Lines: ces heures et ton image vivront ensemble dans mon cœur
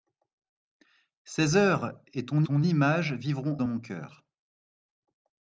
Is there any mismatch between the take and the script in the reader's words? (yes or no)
yes